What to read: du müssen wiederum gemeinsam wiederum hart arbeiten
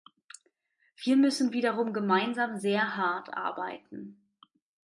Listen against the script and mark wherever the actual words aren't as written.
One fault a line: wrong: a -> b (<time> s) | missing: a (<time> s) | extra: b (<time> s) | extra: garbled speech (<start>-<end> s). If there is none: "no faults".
wrong: du -> wir (1.0 s)
wrong: wiederum -> sehr (2.6 s)